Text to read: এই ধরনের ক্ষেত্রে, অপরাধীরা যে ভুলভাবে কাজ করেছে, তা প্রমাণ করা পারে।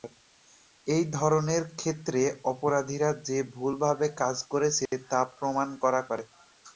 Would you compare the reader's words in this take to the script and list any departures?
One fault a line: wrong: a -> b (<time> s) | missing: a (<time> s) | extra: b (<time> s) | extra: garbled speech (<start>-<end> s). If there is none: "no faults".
no faults